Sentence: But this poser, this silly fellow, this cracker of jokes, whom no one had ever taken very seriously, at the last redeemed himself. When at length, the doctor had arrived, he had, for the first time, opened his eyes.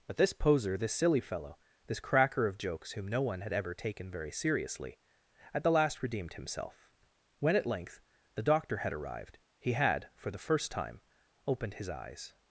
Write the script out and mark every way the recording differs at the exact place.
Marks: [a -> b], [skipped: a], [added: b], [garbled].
But this poser, this silly fellow, this cracker of jokes, whom no one had ever taken very seriously, at the last redeemed himself. When at length, the doctor had arrived, he had, for the first time, opened his eyes.